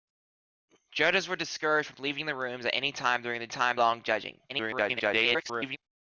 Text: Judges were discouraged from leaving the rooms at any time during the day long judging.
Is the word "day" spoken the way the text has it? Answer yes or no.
no